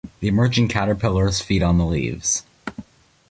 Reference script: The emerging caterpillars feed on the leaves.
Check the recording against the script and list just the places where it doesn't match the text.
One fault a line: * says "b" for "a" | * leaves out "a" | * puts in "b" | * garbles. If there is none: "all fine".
all fine